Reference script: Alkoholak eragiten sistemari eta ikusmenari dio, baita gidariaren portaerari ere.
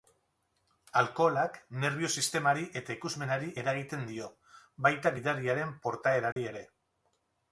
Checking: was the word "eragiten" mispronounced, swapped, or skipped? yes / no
yes